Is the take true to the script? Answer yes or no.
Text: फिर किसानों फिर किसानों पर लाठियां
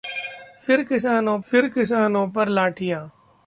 yes